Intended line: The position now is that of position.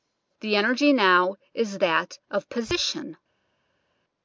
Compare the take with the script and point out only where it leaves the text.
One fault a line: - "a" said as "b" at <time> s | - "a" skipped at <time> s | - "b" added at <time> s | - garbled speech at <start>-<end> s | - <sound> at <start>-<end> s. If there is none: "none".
- "position" said as "energy" at 0.6 s